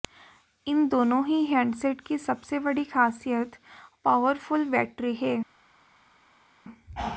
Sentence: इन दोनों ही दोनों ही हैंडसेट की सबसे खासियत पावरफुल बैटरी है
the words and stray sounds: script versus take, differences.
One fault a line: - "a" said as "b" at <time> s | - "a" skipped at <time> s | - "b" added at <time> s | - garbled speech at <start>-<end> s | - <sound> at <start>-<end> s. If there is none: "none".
- "दोनों ही" skipped at 1.4 s
- "बड़ी" added at 2.6 s